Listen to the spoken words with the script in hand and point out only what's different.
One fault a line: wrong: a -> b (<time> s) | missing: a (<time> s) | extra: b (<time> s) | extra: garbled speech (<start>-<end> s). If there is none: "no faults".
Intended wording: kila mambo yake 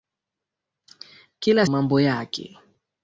no faults